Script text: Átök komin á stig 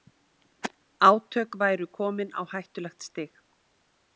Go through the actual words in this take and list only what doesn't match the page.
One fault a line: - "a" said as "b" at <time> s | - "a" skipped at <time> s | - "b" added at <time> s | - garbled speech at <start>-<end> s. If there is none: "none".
- "væru" added at 1.6 s
- "hættulegt" added at 2.5 s